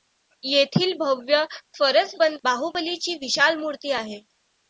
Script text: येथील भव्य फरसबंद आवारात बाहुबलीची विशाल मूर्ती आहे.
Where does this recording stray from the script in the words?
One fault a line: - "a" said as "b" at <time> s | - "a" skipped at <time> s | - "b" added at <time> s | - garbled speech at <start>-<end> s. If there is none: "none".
- "आवारात" skipped at 2.4 s